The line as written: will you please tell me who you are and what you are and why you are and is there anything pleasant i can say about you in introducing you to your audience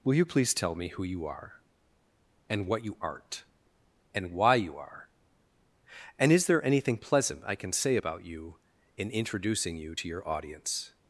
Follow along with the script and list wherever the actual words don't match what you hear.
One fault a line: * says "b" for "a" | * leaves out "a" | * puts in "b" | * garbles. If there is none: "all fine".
* says "aren't" for "are"